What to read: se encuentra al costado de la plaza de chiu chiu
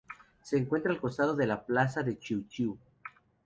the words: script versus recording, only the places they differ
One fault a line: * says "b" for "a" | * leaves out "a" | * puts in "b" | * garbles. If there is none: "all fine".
all fine